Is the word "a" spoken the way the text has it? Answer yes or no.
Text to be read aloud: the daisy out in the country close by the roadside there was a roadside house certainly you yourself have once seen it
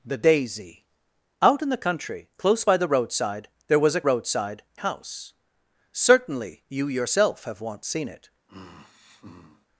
yes